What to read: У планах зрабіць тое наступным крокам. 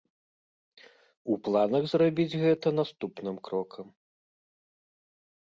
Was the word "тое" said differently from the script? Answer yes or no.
yes